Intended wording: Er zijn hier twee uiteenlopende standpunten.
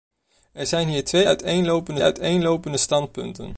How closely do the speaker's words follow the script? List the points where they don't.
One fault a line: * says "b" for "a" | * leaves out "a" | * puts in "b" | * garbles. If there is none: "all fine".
* puts in "uiteenlopende"